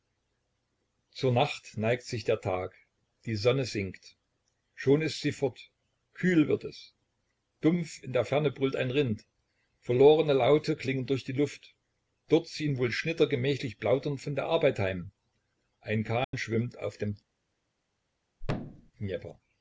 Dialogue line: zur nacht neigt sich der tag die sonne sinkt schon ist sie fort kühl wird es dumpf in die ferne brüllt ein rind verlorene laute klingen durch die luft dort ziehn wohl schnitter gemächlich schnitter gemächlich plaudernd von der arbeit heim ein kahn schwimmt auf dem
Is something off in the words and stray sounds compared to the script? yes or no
yes